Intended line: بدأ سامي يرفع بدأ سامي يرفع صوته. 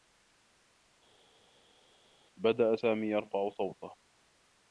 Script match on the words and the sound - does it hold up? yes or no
no